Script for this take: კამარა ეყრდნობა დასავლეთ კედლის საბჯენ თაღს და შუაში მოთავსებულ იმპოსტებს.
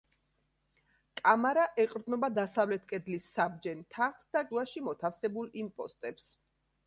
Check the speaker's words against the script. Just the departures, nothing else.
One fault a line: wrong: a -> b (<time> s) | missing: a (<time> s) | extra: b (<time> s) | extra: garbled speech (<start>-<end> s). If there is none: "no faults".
no faults